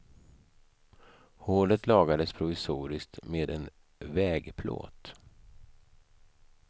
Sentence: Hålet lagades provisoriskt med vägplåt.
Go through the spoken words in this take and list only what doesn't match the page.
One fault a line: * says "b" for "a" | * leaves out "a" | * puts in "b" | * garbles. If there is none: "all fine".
* puts in "en"